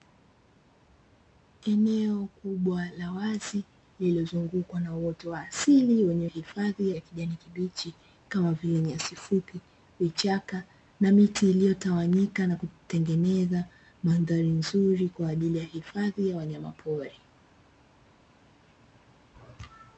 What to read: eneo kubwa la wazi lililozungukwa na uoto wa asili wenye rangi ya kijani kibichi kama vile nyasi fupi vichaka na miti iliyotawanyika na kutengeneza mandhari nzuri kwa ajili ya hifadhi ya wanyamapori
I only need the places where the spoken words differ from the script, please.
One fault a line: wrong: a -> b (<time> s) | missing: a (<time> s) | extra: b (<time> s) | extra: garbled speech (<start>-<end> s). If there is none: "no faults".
wrong: rangi -> hifadhi (6.2 s)